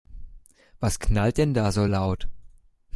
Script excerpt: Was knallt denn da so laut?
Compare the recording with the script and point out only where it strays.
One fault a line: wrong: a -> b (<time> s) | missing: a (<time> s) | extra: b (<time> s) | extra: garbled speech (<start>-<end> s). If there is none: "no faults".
no faults